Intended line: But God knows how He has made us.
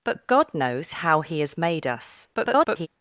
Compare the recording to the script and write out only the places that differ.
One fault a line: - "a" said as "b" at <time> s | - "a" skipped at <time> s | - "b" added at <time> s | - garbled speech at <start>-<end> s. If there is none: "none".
- garbled speech at 2.3-2.9 s